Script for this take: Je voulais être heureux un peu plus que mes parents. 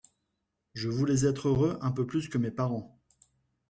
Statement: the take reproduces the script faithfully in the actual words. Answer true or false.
true